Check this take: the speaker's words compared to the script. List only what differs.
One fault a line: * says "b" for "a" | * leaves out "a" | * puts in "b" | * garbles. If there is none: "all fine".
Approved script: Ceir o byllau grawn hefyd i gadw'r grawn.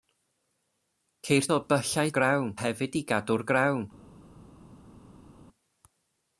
all fine